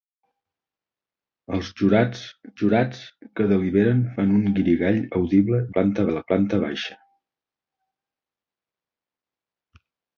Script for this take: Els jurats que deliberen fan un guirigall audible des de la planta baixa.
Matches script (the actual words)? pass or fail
fail